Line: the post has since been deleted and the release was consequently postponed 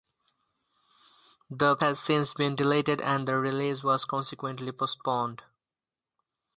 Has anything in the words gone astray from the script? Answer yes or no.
yes